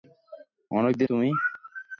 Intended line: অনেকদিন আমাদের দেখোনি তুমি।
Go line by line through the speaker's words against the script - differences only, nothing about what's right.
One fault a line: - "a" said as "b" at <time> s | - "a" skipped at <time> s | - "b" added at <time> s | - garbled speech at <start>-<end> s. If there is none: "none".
- "আমাদের দেখোনি" skipped at 1.1 s